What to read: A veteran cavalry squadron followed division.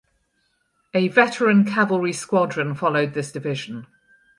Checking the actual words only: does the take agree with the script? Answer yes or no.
no